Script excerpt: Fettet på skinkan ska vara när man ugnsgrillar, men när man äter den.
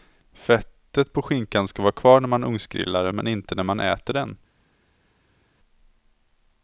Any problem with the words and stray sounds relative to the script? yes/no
yes